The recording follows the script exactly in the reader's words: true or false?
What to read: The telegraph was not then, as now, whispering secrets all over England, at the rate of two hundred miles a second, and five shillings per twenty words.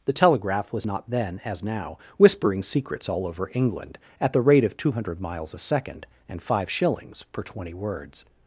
true